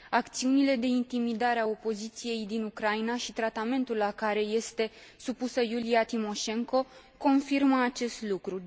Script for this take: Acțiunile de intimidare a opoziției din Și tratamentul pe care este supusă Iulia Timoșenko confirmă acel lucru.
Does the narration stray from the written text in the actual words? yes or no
yes